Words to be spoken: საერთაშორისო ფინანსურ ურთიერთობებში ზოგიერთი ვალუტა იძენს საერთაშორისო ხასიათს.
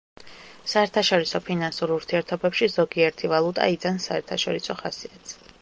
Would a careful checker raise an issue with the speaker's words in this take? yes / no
no